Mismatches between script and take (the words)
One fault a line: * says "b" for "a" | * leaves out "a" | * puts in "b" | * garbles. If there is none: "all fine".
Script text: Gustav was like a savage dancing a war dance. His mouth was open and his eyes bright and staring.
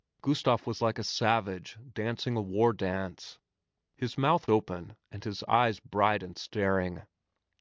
* leaves out "was"